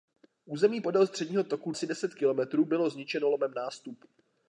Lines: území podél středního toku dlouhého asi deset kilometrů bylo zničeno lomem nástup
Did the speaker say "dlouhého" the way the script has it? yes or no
no